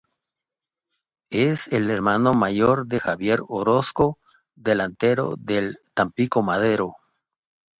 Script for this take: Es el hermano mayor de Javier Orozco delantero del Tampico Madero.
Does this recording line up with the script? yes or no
yes